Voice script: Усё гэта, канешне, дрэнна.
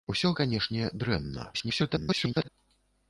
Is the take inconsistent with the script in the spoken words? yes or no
yes